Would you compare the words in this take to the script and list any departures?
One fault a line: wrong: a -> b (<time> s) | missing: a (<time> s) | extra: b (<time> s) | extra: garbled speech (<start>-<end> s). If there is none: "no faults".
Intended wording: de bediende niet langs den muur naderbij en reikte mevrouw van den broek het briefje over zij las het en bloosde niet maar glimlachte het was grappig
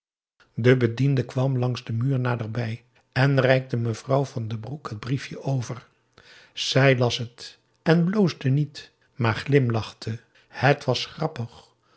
wrong: niet -> kwam (1.2 s)